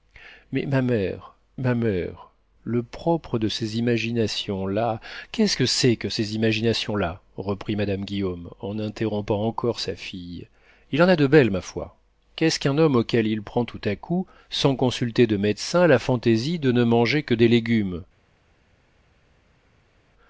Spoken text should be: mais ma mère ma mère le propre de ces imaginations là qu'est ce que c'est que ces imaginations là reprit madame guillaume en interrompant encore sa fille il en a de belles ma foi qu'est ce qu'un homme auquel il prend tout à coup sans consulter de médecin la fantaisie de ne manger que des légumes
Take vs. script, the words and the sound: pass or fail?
pass